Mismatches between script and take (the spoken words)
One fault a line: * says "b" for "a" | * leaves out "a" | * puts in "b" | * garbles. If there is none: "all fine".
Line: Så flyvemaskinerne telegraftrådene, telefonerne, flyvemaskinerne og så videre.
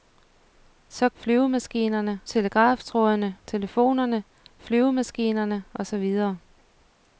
all fine